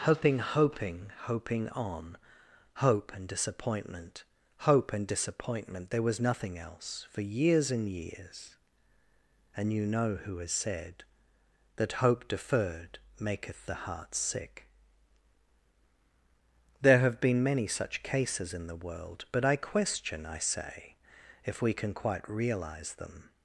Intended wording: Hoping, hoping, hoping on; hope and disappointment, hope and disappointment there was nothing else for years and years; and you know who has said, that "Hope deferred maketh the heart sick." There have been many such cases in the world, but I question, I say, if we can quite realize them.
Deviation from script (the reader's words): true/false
false